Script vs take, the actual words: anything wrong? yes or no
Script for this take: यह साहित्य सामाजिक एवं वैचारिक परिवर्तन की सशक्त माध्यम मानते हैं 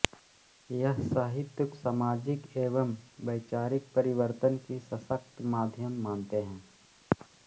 no